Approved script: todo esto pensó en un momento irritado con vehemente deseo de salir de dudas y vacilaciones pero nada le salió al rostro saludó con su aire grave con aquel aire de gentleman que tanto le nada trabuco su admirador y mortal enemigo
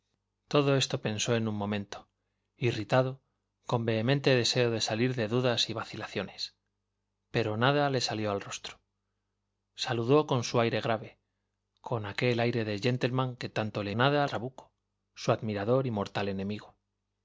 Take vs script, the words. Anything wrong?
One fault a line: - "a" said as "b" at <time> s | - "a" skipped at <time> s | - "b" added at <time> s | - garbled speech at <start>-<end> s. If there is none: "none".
none